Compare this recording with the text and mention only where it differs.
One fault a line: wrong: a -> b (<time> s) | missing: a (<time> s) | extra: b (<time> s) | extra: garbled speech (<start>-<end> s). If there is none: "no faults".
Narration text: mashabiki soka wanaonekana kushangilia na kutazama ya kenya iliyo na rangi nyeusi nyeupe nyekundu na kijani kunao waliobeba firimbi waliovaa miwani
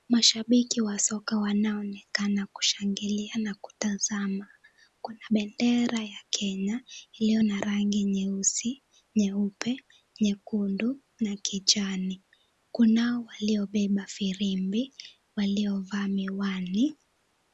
extra: wa (0.8 s)
extra: kuna bendera (5.0 s)